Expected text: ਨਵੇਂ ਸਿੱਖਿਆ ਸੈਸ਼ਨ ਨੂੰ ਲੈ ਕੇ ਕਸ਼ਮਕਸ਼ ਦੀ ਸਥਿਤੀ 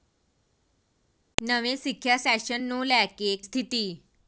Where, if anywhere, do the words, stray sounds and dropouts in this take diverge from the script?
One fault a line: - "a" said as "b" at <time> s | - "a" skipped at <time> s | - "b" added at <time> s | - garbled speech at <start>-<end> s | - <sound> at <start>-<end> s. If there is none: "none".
- "ਕਸ਼ਮਕਸ਼ ਦੀ" skipped at 3.4 s